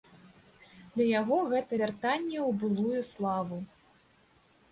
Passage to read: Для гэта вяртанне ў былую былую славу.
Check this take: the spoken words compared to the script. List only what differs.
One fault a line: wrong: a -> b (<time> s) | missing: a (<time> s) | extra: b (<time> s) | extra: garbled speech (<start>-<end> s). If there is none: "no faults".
extra: яго (1.2 s)
missing: былую (3.0 s)